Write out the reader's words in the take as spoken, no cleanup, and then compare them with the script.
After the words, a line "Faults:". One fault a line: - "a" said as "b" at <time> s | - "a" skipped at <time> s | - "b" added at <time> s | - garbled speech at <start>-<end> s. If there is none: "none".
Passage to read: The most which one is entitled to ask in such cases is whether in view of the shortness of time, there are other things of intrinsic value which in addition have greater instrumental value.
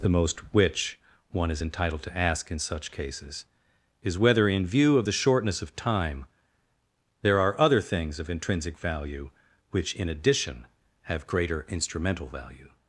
The most which one is entitled to ask in such cases is whether in view of the shortness of time, there are other things of intrinsic value which in addition have greater instrumental value.
Faults:
none